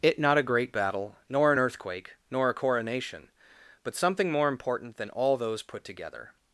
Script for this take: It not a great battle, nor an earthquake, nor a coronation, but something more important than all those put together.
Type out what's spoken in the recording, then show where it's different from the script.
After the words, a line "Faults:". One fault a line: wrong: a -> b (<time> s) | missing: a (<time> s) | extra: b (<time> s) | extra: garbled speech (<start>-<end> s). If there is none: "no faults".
It not a great battle, nor an earthquake, nor a coronation, but something more important than all those put together.
Faults:
no faults